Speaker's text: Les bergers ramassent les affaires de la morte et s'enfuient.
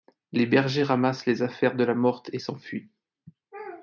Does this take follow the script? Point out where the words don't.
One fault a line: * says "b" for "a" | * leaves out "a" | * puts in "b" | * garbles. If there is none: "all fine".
all fine